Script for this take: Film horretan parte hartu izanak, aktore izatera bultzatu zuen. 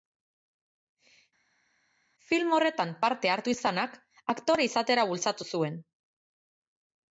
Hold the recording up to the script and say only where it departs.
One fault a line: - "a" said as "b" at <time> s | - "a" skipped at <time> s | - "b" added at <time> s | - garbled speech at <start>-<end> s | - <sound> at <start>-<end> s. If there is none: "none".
none